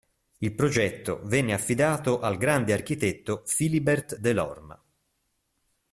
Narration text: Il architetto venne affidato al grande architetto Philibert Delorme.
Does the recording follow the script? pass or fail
fail